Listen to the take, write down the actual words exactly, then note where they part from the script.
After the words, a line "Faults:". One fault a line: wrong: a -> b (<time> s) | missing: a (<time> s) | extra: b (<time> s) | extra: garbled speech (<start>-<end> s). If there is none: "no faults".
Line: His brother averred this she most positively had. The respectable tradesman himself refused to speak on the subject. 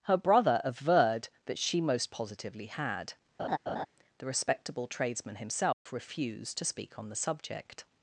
Her brother averred that she most positively had. The respectable tradesman himself refused to speak on the subject.
Faults:
wrong: His -> Her (0.1 s)
wrong: this -> that (1.5 s)